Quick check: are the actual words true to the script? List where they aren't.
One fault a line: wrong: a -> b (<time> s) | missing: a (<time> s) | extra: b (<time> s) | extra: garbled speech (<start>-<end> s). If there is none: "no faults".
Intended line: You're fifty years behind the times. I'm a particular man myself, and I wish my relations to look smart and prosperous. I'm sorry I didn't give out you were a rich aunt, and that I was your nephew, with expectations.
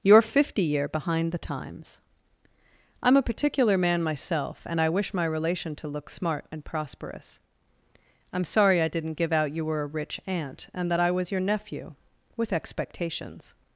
wrong: years -> year (0.6 s)
wrong: relations -> relation (5.2 s)